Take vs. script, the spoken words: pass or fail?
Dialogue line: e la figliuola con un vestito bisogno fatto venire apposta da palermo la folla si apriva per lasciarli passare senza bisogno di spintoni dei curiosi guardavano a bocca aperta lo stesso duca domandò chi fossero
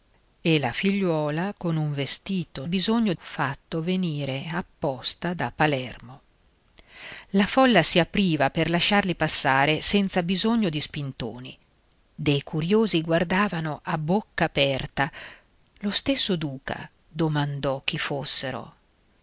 pass